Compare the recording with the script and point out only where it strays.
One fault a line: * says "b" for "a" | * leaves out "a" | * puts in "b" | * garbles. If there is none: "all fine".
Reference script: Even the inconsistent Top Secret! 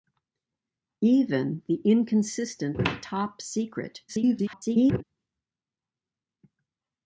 * garbles